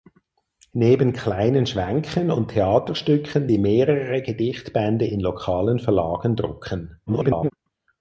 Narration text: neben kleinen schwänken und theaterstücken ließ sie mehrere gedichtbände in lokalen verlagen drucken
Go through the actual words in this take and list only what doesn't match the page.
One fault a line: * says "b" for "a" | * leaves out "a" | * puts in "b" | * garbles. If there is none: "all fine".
* leaves out "ließ"
* garbles